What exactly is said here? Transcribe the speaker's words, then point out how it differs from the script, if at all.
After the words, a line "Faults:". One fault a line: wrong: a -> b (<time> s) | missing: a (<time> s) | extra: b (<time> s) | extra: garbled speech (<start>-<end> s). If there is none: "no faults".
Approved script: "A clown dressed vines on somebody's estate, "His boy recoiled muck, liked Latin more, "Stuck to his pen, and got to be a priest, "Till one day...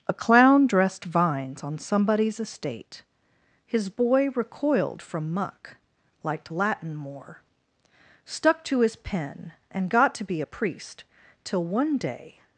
"A clown dressed vines on somebody's estate, "His boy recoiled from muck, liked Latin more, "Stuck to his pen, and got to be a priest, "Till one day...
Faults:
extra: from (5.0 s)